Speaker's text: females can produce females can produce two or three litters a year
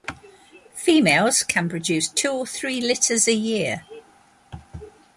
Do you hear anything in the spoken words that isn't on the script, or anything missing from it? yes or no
yes